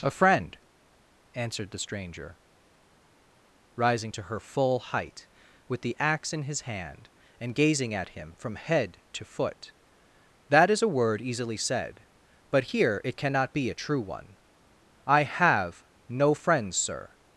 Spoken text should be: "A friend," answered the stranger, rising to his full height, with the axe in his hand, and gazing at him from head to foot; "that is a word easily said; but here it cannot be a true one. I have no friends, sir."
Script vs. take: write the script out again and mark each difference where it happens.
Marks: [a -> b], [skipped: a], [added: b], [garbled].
"A friend," answered the stranger, rising to [his -> her] full height, with the axe in his hand, and gazing at him from head to foot; "that is a word easily said; but here it cannot be a true one. I have no friends, sir."